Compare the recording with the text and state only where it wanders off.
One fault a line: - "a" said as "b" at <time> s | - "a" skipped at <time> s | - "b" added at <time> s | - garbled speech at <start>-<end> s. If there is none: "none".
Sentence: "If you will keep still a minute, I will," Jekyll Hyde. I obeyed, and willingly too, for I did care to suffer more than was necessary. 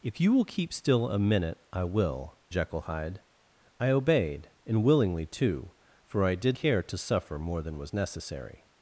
none